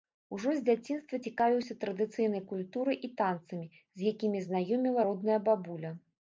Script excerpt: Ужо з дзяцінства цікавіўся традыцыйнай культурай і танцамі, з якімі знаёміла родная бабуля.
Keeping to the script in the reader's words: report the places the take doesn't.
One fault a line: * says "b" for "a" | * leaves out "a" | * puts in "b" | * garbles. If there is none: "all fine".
all fine